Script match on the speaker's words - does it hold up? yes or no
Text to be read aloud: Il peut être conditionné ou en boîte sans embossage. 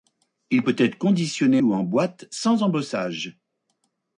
yes